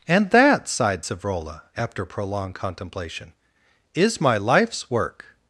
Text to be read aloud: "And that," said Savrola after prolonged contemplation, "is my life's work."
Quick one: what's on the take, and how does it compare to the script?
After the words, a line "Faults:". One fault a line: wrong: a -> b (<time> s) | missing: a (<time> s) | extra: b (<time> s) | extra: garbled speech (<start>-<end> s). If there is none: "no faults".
"And that," sighed Savrola after prolonged contemplation, "is my life's work."
Faults:
wrong: said -> sighed (0.7 s)